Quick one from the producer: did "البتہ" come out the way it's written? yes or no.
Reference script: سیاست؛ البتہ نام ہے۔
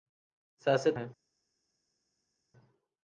no